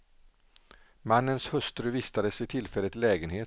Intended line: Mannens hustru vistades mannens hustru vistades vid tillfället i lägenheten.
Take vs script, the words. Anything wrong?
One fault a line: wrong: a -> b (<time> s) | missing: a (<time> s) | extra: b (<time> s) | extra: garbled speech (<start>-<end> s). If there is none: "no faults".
missing: mannens hustru vistades (2.4 s)